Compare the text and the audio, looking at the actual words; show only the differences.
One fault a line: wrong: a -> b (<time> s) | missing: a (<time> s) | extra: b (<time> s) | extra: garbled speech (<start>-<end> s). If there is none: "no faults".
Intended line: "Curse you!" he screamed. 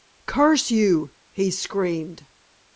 no faults